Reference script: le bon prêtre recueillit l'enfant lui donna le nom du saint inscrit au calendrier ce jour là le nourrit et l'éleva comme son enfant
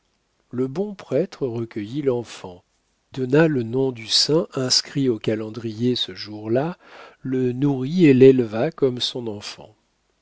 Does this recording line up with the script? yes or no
no